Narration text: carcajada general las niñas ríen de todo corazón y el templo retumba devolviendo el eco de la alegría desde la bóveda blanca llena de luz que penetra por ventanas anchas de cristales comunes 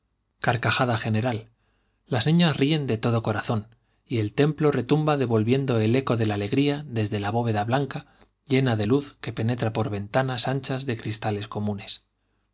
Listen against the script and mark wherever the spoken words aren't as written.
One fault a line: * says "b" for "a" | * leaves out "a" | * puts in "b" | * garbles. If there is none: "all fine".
all fine